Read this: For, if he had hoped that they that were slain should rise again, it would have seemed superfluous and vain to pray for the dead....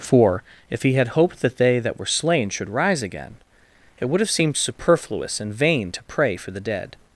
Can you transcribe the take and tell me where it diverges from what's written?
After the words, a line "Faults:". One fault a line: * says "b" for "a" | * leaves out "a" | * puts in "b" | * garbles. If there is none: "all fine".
For, if he had hoped that they that were slain should rise again, it would have seemed superfluous and vain to pray for the dead....
Faults:
all fine